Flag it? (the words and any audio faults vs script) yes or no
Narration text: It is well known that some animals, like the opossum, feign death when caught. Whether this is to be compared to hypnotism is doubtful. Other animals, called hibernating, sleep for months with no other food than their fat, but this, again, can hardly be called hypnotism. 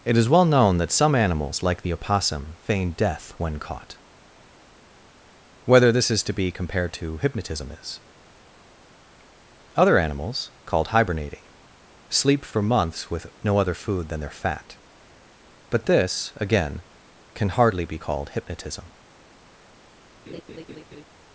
yes